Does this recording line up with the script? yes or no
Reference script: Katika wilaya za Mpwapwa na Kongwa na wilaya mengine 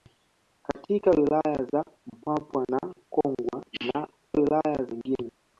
yes